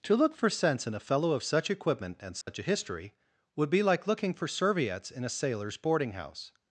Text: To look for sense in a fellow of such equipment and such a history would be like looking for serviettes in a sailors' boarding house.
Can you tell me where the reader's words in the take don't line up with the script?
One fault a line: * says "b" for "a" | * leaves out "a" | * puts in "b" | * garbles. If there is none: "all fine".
all fine